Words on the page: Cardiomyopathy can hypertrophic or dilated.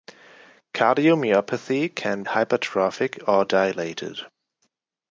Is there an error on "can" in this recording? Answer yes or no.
no